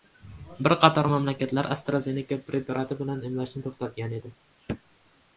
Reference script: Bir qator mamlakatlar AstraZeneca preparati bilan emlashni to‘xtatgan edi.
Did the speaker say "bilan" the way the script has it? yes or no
yes